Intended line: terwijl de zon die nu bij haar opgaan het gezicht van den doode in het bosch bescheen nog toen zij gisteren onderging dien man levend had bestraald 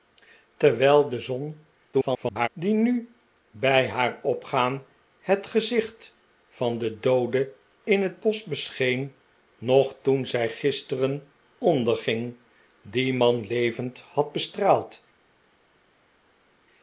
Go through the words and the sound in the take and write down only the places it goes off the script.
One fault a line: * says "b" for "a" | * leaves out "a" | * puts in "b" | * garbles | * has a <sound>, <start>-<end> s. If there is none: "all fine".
* garbles